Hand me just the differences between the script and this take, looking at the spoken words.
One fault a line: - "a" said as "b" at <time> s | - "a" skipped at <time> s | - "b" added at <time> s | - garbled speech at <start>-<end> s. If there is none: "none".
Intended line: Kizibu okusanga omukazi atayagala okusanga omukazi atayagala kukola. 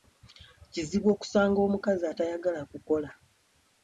- "okusanga omukazi atayagala" skipped at 2.6 s